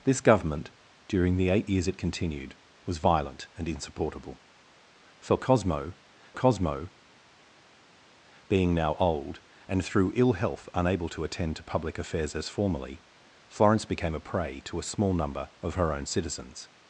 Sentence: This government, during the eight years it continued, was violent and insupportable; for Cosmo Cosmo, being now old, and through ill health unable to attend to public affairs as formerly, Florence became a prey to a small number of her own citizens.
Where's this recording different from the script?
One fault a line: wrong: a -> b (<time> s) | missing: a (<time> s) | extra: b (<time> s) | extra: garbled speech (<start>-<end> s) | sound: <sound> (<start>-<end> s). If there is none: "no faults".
no faults